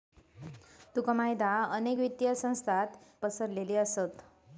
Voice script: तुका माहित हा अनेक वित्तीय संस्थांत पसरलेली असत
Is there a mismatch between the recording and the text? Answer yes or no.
no